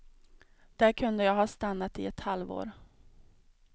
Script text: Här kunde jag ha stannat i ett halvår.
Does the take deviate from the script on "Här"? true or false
true